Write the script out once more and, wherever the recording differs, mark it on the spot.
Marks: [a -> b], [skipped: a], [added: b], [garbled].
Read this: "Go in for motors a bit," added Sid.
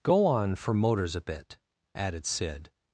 "Go [in -> on] for motors a bit," added Sid.